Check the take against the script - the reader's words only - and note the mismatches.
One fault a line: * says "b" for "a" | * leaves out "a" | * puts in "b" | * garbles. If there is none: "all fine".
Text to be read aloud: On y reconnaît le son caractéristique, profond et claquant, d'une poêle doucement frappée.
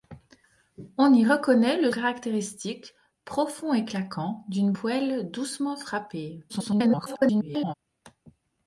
* leaves out "son"
* garbles